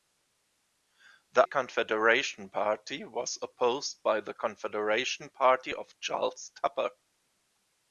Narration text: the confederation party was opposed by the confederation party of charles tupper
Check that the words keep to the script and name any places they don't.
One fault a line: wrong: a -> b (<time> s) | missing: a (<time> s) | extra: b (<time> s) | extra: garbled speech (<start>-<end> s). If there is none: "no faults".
no faults